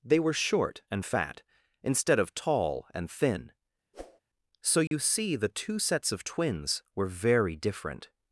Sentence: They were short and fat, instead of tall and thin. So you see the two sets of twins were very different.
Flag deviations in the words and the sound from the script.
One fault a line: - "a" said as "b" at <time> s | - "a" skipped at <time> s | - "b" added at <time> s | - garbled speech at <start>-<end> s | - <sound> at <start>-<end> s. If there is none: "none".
- whoosh at 3.9-4.2 s
- dropout at 4.9-4.9 s